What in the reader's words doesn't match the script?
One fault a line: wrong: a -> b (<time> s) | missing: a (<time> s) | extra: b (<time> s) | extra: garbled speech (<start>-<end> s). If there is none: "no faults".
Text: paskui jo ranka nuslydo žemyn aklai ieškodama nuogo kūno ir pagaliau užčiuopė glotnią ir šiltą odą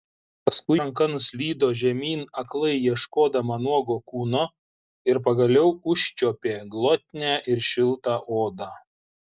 missing: jo (0.8 s)